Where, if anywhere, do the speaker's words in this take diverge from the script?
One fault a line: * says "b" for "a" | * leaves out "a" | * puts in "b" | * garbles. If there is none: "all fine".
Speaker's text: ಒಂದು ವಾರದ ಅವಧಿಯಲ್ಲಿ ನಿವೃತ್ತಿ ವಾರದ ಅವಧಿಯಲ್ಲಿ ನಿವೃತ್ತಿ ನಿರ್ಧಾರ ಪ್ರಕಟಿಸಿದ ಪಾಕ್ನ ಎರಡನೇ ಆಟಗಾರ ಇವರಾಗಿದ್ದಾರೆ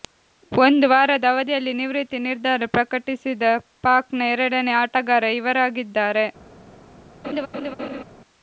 * leaves out "ವಾರದ ಅವಧಿಯಲ್ಲಿ ನಿವೃತ್ತಿ"